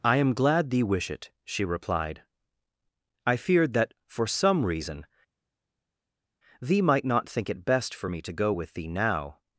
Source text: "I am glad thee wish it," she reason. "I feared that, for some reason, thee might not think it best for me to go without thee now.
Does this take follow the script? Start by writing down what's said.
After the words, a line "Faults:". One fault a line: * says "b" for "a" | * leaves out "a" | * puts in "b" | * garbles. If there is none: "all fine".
"I am glad thee wish it," she replied. "I feared that, for some reason, thee might not think it best for me to go with thee now.
Faults:
* says "replied" for "reason"
* says "with" for "without"